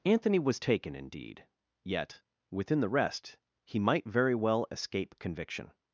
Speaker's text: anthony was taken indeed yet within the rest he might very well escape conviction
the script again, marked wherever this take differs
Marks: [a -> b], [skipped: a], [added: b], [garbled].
anthony was taken indeed yet within the rest he might very well escape conviction